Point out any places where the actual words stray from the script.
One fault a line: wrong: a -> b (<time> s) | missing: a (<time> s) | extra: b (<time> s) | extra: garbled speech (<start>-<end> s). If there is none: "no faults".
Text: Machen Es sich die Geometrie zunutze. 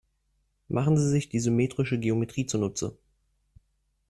wrong: Es -> Sie (1.0 s)
extra: symmetrische (1.4 s)